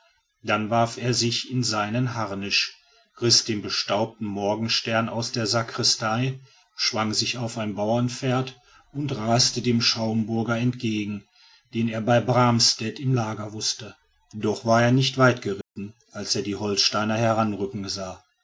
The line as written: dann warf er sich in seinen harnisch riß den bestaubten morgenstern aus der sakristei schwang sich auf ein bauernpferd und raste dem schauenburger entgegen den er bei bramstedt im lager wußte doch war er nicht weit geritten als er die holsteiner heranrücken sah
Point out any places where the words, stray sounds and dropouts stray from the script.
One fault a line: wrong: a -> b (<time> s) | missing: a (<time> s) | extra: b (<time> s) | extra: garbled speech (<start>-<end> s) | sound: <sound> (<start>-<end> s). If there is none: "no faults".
sound: dropout (15.6-15.8 s)